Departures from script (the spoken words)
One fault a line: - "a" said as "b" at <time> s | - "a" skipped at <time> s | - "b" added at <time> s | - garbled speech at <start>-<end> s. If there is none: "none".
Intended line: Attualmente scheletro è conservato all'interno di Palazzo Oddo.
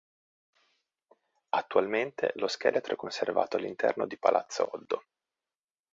- "lo" added at 2.4 s